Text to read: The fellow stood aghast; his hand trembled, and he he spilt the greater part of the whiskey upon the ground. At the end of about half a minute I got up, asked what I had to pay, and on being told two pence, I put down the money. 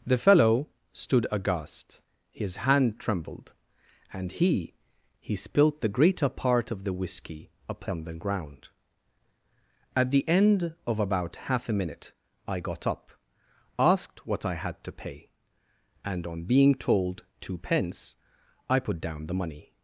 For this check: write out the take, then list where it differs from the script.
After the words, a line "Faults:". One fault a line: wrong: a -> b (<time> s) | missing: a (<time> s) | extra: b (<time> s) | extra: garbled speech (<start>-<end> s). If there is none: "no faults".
The fellow stood aghast; his hand trembled, and he he spilt the greater part of the whiskey upon the ground. At the end of about half a minute I got up, asked what I had to pay, and on being told two pence, I put down the money.
Faults:
no faults